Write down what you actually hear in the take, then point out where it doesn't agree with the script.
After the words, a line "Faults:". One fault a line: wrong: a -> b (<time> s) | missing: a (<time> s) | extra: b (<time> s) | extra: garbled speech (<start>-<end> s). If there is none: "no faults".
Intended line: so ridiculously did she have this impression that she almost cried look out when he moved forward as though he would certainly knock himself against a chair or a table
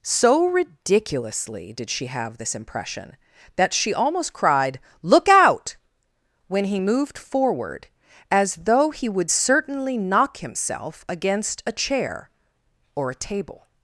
so ridiculously did she have this impression that she almost cried look out when he moved forward as though he would certainly knock himself against a chair or a table
Faults:
no faults